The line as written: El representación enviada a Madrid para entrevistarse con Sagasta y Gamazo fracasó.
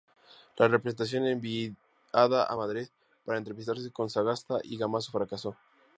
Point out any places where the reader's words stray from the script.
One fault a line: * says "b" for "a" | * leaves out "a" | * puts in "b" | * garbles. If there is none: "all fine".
* says "La" for "El"